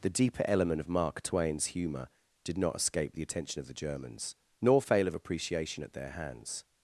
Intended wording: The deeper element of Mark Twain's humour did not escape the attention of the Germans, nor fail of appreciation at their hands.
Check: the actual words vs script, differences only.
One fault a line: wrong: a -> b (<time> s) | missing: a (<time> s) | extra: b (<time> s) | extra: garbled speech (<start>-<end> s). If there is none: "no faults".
no faults